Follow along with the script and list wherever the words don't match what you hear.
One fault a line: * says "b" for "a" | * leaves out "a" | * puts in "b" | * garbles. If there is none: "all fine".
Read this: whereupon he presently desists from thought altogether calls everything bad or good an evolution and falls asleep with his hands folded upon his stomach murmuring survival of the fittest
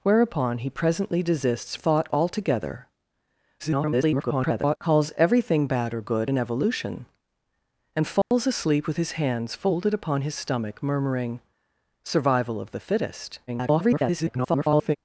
* leaves out "from"
* garbles
* garbles